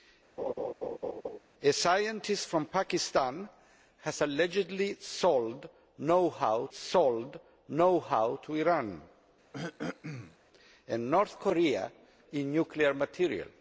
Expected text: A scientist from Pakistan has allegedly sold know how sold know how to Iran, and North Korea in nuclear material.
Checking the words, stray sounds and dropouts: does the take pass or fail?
fail